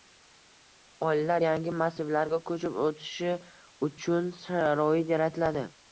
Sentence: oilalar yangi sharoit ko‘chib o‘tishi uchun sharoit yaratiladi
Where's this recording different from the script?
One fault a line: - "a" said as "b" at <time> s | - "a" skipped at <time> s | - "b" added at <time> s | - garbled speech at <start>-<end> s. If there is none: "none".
- "sharoit" said as "massivlarga" at 1.8 s